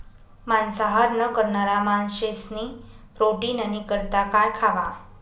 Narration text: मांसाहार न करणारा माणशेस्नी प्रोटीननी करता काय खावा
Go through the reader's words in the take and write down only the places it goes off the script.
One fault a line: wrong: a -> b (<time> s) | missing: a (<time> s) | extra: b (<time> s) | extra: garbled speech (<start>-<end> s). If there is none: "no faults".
no faults